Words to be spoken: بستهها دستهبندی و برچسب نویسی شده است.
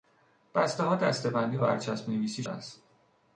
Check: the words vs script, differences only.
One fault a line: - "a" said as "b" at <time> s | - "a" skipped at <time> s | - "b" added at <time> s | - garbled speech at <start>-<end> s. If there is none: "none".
- "و" skipped at 1.6 s
- "شده" skipped at 2.4 s